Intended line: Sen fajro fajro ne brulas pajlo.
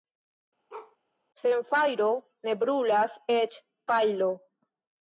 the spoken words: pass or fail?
fail